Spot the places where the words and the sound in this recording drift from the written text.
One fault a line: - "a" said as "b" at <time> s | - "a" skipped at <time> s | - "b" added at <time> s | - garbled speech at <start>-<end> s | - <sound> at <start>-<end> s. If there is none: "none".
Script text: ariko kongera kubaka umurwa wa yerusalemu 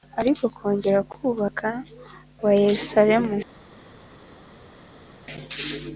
- "umurwa" skipped at 1.7 s